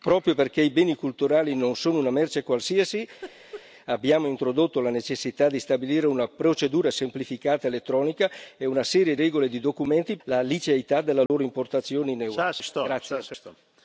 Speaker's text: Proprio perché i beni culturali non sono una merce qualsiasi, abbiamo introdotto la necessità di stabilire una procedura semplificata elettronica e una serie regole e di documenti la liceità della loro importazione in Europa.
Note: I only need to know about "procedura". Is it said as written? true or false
true